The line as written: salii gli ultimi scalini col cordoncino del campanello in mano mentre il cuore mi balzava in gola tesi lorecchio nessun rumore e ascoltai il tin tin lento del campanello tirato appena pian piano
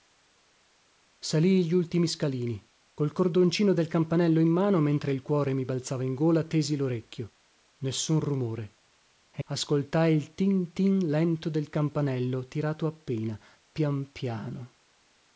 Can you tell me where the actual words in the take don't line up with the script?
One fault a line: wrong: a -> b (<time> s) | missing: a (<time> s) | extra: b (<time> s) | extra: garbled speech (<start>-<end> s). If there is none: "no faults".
no faults